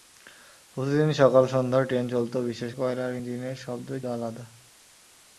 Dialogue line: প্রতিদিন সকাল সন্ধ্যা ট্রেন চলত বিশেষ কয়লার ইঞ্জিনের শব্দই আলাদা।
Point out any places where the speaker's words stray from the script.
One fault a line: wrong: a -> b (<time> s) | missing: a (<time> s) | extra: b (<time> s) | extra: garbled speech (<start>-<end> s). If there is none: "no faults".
no faults